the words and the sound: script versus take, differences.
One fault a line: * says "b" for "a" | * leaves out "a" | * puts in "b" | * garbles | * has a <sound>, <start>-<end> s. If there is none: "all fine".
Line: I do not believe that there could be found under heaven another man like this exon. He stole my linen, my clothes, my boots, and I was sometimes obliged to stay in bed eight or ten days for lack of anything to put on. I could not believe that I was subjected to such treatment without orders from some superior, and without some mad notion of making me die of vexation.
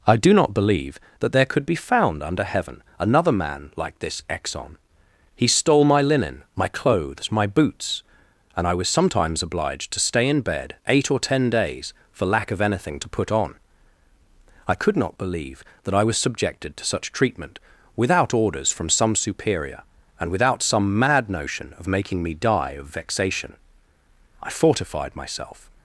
* puts in "I fortified myself"